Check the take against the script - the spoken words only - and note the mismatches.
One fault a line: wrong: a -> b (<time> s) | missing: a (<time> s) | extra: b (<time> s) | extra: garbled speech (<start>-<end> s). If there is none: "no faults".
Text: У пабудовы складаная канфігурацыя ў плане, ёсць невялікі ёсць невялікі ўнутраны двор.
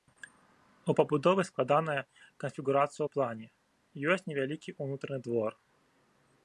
missing: ёсць невялікі (4.8 s)